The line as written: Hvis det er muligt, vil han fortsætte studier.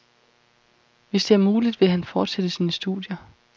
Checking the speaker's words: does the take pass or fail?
fail